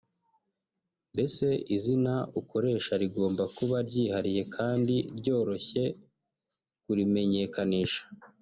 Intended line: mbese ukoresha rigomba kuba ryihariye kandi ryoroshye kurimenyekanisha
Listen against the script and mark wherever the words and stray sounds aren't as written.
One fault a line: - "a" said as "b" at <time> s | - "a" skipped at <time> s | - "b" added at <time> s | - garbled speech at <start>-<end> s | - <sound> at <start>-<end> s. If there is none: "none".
- "izina" added at 1.8 s